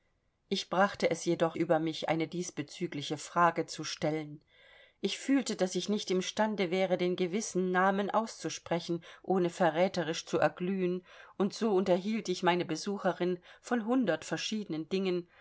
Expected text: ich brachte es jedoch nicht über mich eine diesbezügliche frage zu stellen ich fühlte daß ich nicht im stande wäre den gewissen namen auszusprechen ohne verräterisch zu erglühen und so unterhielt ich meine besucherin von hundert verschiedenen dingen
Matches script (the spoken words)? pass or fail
fail